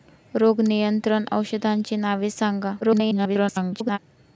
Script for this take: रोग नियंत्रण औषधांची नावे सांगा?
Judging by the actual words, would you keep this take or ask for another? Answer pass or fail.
fail